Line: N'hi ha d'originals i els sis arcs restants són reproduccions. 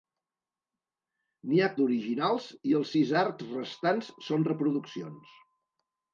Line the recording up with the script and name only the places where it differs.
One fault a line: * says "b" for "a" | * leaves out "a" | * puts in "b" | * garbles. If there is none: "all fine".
all fine